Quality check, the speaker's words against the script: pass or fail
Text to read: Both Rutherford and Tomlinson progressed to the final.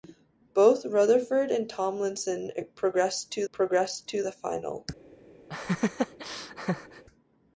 fail